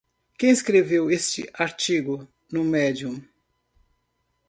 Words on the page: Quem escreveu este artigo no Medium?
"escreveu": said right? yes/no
yes